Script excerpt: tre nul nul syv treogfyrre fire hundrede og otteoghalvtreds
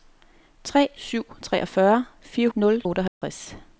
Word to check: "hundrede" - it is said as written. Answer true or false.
false